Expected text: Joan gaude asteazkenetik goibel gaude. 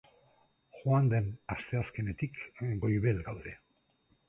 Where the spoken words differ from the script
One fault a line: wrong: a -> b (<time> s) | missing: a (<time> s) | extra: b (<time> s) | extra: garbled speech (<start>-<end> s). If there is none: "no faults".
wrong: gaude -> den (1.1 s)